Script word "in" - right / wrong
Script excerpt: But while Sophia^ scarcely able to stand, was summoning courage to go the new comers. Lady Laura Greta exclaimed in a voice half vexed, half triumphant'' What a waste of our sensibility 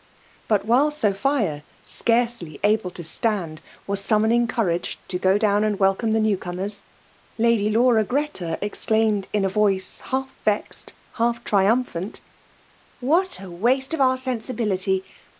right